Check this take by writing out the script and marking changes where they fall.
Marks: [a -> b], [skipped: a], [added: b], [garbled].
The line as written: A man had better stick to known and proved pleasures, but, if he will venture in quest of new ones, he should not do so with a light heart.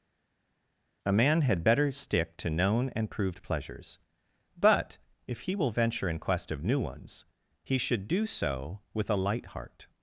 A man had better stick to known and proved pleasures, but, if he will venture in quest of new ones, he should [skipped: not] do so with a light heart.